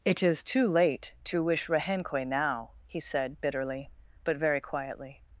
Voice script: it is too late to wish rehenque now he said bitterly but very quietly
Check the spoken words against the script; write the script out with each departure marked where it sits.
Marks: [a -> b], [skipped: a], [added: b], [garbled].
it is too late to wish rehenque now he said bitterly but very quietly